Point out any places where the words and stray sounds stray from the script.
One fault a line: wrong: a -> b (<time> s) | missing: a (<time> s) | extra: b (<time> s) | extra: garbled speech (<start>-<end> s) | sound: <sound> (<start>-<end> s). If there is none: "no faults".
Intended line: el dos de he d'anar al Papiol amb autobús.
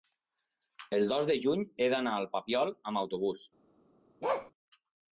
extra: juny (1.4 s)
sound: bark (4.2-4.5 s)